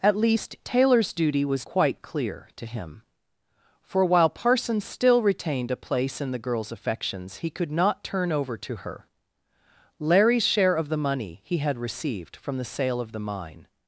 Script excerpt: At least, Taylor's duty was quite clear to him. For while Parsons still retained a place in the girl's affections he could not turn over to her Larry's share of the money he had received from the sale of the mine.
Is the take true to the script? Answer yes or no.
yes